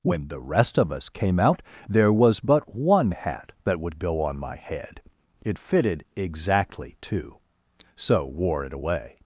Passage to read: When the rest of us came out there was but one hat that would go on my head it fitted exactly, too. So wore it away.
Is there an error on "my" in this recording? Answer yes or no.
no